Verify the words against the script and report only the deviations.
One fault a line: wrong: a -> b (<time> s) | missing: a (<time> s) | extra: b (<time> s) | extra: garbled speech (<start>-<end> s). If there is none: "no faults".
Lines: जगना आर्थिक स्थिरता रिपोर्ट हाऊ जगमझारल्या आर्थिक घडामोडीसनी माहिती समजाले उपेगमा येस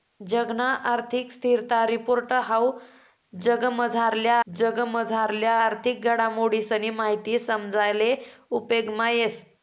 extra: जगमझारल्या (4.5 s)